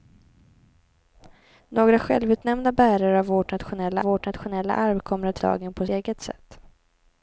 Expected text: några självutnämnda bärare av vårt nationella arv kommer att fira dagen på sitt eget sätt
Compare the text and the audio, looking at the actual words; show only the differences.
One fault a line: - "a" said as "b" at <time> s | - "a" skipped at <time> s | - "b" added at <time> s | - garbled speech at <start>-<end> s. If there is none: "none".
- "vårt nationella" added at 4.0 s
- "fira" skipped at 5.4 s
- "sitt" skipped at 5.9 s